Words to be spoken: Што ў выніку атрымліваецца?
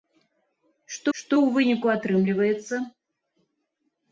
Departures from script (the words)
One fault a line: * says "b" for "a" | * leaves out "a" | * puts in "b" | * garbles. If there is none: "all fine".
* puts in "што"